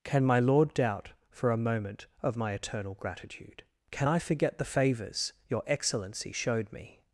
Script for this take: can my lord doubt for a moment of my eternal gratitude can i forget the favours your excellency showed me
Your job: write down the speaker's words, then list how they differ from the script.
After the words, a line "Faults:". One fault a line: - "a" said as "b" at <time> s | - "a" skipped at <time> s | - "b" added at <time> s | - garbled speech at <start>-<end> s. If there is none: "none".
can my lord doubt for a moment of my eternal gratitude can i forget the favours your excellency showed me
Faults:
none